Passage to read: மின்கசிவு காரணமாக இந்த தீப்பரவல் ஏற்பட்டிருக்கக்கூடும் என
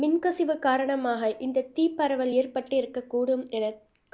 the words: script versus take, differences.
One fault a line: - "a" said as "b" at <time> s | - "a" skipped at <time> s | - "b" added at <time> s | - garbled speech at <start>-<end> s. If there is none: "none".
none